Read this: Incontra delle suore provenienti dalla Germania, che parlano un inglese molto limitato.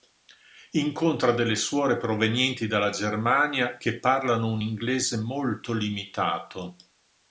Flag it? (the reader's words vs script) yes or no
no